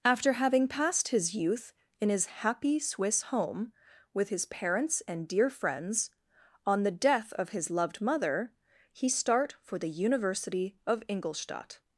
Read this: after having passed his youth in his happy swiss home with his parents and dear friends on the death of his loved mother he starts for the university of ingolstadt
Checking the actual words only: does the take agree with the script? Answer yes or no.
no